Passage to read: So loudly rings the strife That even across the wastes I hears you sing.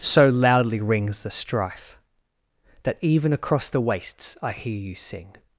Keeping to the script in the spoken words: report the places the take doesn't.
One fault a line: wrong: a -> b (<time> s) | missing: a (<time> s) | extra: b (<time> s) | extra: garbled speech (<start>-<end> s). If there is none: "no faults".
wrong: hears -> hear (4.5 s)